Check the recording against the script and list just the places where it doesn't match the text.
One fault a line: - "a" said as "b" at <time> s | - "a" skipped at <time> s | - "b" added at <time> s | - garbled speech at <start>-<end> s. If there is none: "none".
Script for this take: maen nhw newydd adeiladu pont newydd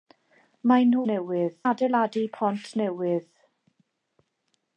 none